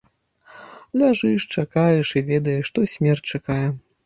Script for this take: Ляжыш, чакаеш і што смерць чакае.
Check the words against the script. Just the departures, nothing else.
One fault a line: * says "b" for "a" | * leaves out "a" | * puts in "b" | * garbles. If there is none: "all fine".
* puts in "ведаеш"